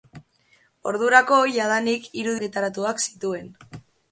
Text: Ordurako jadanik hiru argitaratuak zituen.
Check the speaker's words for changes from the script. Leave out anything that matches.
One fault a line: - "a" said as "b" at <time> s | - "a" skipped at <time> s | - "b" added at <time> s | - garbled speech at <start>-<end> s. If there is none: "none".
none